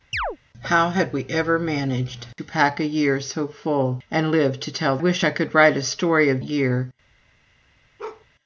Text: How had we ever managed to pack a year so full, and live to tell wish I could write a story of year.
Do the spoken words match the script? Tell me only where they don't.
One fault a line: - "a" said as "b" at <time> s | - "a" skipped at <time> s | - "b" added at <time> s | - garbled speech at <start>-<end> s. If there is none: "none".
none